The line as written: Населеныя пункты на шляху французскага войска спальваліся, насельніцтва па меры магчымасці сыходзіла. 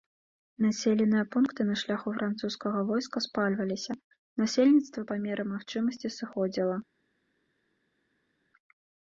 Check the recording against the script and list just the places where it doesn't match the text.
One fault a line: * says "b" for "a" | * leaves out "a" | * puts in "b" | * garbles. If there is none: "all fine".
all fine